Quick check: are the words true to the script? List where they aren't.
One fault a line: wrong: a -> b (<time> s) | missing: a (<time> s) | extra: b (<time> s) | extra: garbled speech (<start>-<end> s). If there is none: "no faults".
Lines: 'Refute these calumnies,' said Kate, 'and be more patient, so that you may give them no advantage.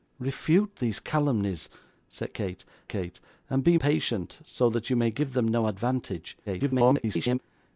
extra: Kate (2.9 s)
missing: more (3.8 s)
extra: garbled speech (6.5-7.4 s)